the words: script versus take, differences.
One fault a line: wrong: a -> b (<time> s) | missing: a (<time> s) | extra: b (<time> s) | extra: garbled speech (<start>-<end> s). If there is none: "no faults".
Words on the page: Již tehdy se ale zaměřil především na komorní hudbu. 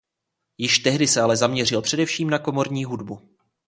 no faults